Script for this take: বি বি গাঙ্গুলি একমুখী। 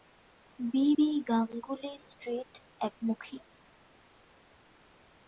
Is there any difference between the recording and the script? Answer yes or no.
yes